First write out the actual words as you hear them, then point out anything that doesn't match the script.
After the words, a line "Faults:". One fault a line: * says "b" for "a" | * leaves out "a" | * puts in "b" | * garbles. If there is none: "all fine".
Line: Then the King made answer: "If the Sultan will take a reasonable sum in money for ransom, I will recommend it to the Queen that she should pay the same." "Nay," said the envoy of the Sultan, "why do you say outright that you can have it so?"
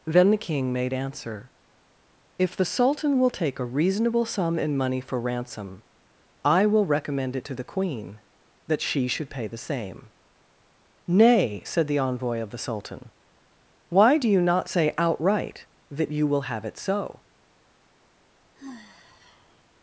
Then the King made answer: "If the Sultan will take a reasonable sum in money for ransom, I will recommend it to the Queen that she should pay the same." "Nay," said the envoy of the Sultan, "why do you not say outright that you will have it so?"
Faults:
* puts in "not"
* says "will" for "can"